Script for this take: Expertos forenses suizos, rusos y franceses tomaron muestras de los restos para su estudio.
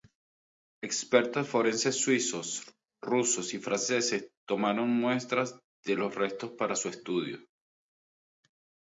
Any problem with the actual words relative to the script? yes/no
no